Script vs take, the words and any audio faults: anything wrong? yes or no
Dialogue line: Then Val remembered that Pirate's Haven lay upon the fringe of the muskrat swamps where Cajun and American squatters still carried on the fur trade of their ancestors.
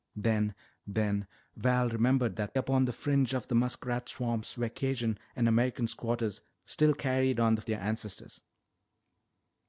yes